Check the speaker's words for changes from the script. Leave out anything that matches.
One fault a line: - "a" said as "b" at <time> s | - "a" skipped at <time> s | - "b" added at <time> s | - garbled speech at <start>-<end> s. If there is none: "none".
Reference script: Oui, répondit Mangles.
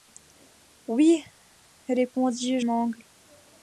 none